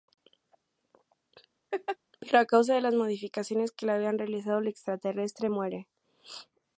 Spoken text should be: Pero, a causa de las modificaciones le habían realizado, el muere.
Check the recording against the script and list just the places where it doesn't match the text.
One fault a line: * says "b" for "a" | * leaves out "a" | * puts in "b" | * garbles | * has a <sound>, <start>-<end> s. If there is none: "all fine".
* has a laugh, 1.7-2.0 s
* puts in "que"
* puts in "extraterrestre"